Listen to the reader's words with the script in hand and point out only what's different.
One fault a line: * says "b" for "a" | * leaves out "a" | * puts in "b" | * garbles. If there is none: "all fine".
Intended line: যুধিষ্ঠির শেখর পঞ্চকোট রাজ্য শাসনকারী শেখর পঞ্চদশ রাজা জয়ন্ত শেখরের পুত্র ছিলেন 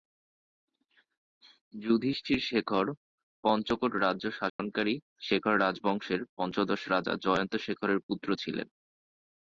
* puts in "রাজবংশের"